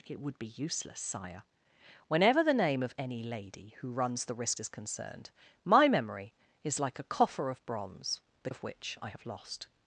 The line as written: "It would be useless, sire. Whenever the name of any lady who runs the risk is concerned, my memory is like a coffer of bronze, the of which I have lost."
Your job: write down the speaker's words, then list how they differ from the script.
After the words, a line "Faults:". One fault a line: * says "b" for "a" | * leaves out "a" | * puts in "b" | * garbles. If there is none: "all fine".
"It would be useless, sire. Whenever the name of any lady who runs the risk is concerned, my memory is like a coffer of bronze, the of which I have lost."
Faults:
all fine